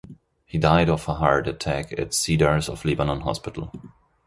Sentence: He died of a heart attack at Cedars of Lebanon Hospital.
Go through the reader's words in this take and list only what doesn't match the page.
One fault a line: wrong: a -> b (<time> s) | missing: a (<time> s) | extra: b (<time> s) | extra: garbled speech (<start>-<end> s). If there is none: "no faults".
no faults